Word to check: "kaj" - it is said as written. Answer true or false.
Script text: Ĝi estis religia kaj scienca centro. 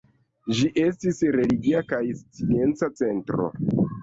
true